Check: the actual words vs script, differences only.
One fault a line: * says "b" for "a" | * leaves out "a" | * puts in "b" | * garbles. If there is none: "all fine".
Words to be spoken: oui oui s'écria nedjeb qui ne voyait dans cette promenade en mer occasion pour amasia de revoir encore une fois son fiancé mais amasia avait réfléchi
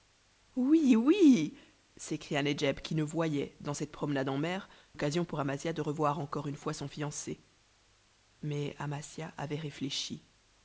all fine